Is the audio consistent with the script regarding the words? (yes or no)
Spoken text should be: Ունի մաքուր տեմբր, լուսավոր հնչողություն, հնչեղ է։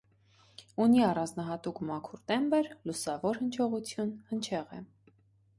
no